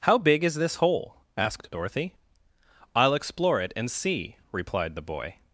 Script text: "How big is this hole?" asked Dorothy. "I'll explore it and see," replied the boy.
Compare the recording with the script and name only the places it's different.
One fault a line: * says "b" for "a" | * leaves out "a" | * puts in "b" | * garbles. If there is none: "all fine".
all fine